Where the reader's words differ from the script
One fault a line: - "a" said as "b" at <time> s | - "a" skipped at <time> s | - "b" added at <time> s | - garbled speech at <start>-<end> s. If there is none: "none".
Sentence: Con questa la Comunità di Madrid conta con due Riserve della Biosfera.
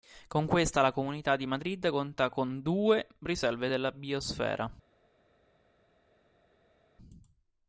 none